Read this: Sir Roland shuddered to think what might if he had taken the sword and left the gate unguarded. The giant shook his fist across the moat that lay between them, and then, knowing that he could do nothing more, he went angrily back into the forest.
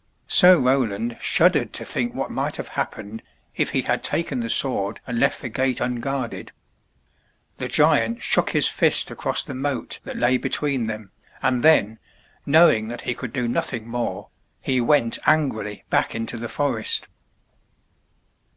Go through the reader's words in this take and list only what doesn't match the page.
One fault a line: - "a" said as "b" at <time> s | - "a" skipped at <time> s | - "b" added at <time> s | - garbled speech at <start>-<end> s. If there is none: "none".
- "have happened" added at 2.6 s